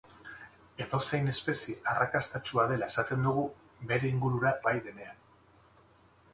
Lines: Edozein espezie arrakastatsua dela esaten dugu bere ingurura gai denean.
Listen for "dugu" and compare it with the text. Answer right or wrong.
right